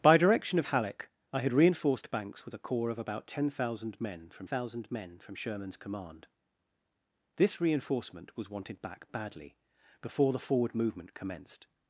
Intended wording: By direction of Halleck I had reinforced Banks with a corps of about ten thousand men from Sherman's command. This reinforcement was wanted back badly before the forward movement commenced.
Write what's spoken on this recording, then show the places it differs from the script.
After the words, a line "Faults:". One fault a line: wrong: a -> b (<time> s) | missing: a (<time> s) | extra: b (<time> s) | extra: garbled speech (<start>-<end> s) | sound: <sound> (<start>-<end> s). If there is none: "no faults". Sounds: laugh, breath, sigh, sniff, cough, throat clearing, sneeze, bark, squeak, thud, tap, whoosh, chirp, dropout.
By direction of Halleck I had reinforced Banks with a corps of about ten thousand men from thousand men from Sherman's command. This reinforcement was wanted back badly before the forward movement commenced.
Faults:
extra: thousand men from (4.4 s)